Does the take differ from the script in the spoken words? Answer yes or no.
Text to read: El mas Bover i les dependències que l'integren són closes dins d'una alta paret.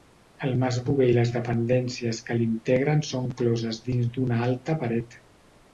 no